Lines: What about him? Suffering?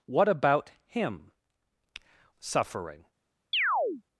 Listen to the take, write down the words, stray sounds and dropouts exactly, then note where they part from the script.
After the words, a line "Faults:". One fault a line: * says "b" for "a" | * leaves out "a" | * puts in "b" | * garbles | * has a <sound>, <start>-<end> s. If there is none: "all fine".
What about him? Suffering?
Faults:
* has a chirp, 3.5-4.0 s